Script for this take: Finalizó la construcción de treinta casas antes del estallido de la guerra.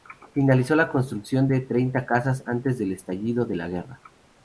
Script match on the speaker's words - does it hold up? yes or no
yes